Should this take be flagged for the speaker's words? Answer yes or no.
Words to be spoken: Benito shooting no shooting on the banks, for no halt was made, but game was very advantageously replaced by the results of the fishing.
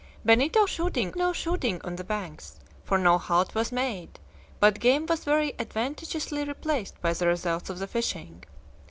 no